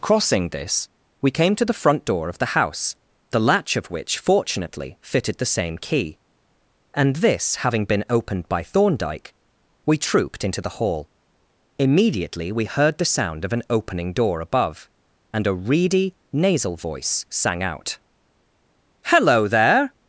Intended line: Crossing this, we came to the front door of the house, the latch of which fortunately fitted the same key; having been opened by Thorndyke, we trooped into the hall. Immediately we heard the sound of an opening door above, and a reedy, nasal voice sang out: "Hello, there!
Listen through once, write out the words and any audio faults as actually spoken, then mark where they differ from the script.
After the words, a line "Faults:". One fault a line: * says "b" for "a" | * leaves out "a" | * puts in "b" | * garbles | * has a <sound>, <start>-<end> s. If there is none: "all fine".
Crossing this, we came to the front door of the house, the latch of which fortunately fitted the same key; and this having been opened by Thorndyke, we trooped into the hall. Immediately we heard the sound of an opening door above, and a reedy, nasal voice sang out: "Hello, there!
Faults:
* puts in "and this"